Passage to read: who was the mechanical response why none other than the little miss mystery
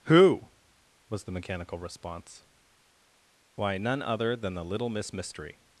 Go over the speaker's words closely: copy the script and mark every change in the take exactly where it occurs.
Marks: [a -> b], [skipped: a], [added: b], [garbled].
who was the mechanical response why none other than the little miss mystery